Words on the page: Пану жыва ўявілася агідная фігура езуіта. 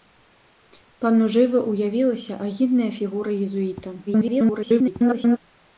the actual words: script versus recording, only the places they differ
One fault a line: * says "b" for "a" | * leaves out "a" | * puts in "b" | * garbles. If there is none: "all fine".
* garbles